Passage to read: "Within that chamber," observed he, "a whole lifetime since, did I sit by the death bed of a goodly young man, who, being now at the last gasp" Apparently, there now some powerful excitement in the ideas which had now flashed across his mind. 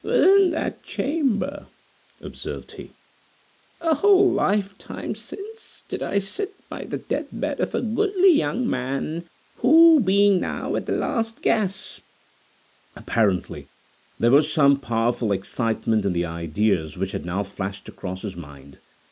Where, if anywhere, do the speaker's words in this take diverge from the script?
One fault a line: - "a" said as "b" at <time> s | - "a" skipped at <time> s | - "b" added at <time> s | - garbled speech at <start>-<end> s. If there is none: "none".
- "now" said as "was" at 14.3 s